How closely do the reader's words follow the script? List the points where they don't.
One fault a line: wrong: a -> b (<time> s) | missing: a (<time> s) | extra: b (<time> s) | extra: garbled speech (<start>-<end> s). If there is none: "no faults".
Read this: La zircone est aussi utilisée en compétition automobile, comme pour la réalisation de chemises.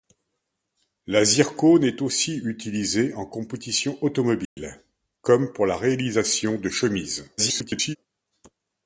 extra: garbled speech (7.4-8.0 s)